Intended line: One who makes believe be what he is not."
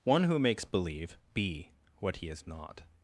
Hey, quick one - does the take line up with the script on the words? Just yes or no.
yes